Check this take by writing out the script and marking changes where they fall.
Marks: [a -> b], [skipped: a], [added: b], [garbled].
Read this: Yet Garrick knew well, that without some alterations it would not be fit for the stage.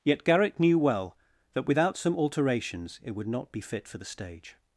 Yet Garrick knew well, that without some alterations it would not be fit for the stage.